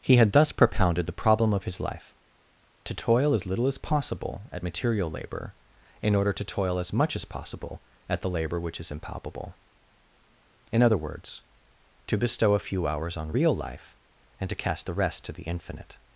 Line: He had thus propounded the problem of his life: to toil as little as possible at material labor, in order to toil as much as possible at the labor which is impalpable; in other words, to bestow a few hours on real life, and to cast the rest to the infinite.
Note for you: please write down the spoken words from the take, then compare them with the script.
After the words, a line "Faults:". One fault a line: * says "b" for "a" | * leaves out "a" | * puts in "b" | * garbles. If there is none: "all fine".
He had thus propounded the problem of his life: to toil as little as possible at material labor, in order to toil as much as possible at the labor which is impalpable; in other words, to bestow a few hours on real life, and to cast the rest to the infinite.
Faults:
all fine